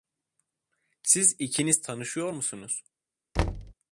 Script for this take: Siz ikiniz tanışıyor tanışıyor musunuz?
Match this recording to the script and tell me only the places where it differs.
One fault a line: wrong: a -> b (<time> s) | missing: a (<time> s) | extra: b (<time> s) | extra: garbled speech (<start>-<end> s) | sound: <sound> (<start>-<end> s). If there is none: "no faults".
missing: tanışıyor (2.3 s)
sound: thud (3.4-3.7 s)